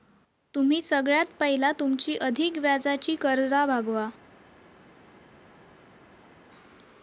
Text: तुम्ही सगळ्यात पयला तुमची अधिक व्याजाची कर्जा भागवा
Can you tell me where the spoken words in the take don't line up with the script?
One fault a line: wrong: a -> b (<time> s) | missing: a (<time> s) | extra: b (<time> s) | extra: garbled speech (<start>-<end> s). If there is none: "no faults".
no faults